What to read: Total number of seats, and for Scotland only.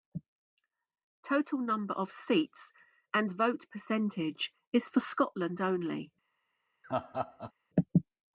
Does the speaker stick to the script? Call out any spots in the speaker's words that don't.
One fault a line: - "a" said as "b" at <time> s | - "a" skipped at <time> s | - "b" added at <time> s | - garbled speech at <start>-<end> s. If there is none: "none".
- "vote percentage is" added at 3.3 s